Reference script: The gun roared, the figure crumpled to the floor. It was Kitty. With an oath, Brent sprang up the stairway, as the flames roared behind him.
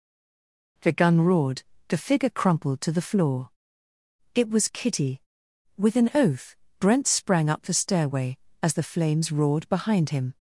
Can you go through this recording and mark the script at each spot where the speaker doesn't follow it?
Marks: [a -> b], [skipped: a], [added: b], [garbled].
The gun roared, the figure crumpled to the floor. It was Kitty. With an oath, Brent sprang up the stairway, as the flames roared behind him.